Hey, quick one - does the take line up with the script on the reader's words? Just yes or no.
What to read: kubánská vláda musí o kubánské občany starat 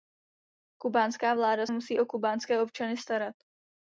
yes